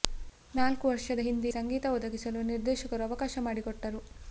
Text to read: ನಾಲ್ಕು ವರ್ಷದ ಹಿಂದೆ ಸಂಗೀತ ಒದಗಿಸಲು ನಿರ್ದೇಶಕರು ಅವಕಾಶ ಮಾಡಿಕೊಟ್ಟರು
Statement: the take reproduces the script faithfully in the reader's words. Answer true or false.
true